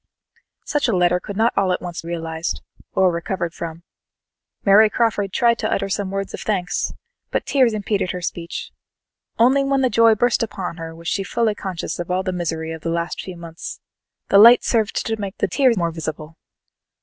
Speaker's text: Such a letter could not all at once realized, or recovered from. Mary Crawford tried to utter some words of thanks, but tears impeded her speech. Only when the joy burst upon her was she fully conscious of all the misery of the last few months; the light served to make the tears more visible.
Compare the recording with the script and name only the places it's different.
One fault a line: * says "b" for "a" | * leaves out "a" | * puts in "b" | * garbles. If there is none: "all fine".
all fine